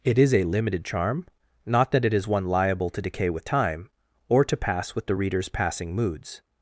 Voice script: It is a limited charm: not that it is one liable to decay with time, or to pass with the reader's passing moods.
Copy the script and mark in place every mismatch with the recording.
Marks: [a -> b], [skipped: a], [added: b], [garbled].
It is a limited charm: not that it is one liable to decay with time, or to pass with the reader's passing moods.